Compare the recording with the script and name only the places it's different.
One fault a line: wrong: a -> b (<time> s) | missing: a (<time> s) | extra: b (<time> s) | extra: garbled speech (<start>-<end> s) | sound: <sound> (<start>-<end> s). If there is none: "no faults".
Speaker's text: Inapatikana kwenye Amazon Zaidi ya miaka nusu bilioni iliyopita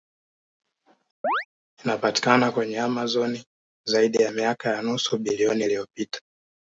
sound: chirp (1.2-1.5 s)
extra: ya (4.7 s)